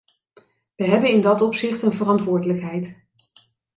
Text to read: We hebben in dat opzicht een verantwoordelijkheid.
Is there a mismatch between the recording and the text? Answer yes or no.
no